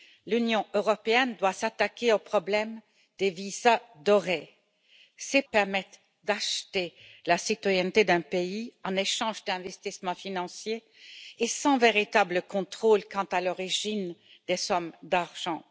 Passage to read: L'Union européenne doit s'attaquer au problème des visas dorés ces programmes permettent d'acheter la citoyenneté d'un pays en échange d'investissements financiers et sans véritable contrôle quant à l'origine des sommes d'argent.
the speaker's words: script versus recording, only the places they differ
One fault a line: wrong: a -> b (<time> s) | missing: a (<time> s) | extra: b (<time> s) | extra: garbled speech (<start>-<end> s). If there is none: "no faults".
missing: programmes (5.4 s)